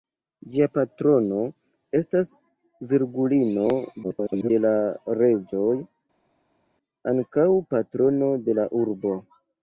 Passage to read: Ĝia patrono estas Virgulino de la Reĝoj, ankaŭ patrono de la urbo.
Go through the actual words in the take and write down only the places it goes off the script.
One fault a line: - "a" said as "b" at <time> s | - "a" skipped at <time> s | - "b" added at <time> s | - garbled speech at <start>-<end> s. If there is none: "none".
- garbled speech at 4.0-4.5 s